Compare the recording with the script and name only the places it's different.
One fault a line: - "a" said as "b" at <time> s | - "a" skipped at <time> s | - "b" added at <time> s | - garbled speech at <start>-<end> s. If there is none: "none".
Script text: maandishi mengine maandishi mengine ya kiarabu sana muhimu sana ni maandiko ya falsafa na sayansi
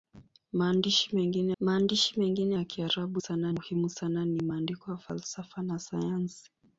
none